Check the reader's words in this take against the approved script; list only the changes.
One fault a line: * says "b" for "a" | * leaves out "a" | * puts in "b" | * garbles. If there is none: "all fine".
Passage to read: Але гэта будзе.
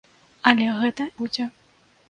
all fine